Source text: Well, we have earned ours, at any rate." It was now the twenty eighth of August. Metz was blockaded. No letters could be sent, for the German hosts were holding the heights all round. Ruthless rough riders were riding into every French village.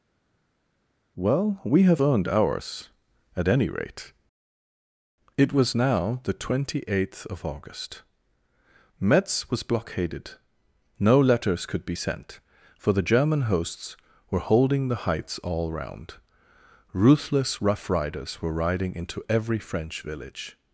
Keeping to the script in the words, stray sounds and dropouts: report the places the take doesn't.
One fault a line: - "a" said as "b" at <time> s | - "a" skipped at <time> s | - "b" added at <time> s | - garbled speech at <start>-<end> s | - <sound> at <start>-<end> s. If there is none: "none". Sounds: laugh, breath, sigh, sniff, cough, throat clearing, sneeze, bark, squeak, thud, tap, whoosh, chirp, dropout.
none